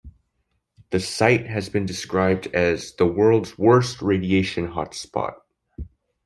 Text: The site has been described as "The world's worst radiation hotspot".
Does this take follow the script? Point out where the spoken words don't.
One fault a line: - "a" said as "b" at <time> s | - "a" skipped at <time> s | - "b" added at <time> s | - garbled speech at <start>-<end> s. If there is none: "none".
none